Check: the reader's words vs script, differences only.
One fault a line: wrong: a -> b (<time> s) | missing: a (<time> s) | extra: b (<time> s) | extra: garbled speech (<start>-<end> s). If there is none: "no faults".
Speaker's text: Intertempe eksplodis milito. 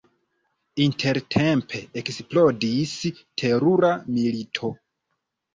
extra: terura (3.4 s)